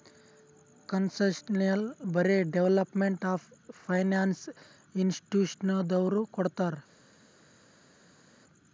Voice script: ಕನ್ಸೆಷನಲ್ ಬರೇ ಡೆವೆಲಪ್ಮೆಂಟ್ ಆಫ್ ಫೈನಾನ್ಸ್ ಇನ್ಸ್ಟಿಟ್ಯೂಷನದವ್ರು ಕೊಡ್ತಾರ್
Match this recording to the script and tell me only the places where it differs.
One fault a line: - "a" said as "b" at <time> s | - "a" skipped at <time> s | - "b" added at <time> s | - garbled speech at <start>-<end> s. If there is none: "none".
none